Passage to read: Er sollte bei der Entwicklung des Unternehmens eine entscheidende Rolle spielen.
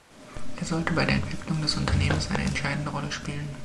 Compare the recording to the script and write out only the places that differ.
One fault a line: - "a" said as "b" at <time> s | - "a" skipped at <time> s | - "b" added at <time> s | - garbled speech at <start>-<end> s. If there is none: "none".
none